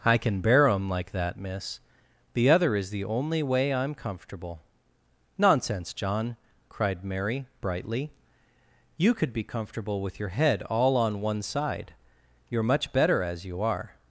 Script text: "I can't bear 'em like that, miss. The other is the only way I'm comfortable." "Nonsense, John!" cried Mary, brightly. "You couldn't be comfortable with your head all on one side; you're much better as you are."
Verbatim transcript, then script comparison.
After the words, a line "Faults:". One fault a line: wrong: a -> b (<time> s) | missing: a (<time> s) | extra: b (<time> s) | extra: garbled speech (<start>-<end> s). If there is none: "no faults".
"I can bear 'em like that, miss. The other is the only way I'm comfortable." "Nonsense, John!" cried Mary, brightly. "You could be comfortable with your head all on one side; you're much better as you are."
Faults:
wrong: can't -> can (0.2 s)
wrong: couldn't -> could (9.1 s)